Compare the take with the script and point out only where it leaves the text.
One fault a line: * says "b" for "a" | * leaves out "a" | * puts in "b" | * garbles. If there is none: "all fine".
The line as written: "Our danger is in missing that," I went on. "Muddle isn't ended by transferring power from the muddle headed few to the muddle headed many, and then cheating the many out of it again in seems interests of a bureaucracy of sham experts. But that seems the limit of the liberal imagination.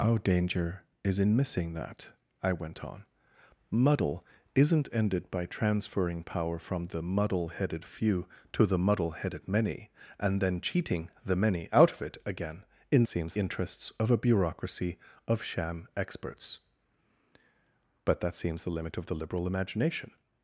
all fine